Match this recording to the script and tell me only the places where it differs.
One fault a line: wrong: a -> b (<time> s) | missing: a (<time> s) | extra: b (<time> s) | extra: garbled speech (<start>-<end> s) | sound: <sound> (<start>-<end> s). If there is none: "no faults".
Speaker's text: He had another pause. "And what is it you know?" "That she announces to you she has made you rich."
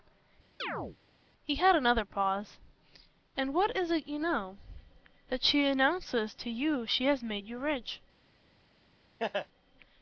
sound: chirp (0.6-1.0 s)
sound: laugh (9.2-9.5 s)